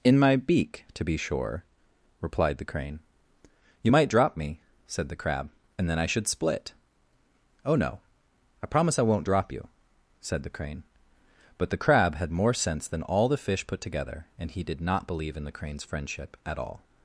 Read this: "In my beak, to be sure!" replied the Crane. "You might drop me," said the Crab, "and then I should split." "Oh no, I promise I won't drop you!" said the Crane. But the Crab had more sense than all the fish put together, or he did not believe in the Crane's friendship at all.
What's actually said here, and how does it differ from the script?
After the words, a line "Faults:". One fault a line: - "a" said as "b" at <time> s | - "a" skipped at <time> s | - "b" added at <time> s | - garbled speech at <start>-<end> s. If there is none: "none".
"In my beak, to be sure!" replied the Crane. "You might drop me," said the Crab, "and then I should split." "Oh no, I promise I won't drop you!" said the Crane. But the Crab had more sense than all the fish put together, and he did not believe in the Crane's friendship at all.
Faults:
- "or" said as "and" at 14.4 s